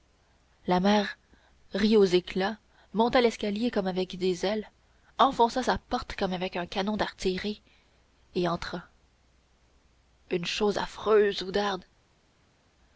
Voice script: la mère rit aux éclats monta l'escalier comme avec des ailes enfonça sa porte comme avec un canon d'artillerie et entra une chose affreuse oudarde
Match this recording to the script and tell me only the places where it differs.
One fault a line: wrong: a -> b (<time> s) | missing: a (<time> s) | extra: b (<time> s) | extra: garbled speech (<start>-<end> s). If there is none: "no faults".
no faults